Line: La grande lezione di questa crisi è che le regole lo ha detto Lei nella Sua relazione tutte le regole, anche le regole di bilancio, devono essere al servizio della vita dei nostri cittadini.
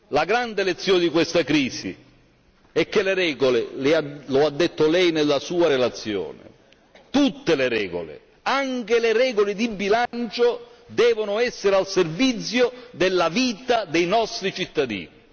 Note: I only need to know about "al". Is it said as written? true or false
true